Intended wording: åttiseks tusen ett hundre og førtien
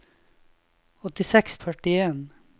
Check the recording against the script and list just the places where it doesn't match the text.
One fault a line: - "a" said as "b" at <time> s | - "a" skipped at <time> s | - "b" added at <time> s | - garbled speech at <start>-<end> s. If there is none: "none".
- "tusen ett hundre" skipped at 1.6 s